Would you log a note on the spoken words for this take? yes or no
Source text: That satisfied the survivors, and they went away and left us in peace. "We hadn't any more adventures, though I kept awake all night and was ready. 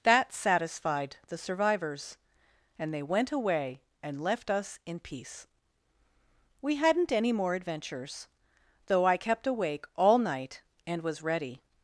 no